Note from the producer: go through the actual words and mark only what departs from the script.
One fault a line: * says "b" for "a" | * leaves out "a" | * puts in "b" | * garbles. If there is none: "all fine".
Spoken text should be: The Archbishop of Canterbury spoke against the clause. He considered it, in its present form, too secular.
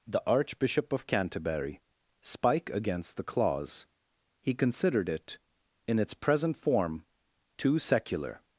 * says "spike" for "spoke"